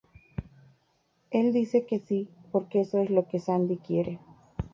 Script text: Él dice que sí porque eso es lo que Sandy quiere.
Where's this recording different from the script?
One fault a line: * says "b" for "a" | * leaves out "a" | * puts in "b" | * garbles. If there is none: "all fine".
all fine